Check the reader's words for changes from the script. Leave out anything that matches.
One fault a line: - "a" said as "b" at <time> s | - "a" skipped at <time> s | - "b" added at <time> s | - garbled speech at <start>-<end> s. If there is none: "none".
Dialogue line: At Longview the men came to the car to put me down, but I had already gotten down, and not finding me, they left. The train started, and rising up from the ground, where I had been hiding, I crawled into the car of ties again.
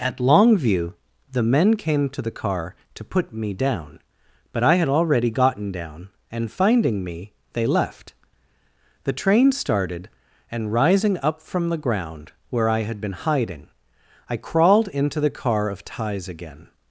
- "not" skipped at 6.5 s